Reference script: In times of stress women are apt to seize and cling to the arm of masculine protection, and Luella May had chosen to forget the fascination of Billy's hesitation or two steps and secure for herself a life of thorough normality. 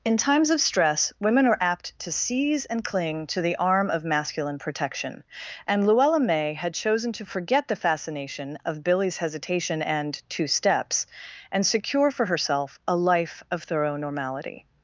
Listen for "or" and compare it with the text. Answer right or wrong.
wrong